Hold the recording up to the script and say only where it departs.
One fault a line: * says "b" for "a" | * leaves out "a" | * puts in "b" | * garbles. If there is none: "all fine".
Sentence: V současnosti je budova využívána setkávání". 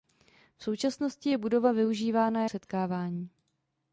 all fine